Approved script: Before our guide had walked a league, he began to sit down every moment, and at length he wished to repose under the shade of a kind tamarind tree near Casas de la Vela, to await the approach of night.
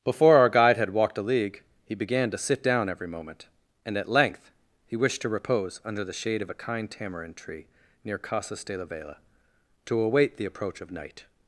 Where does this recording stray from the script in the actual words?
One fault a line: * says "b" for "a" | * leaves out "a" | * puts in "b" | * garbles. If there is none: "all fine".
all fine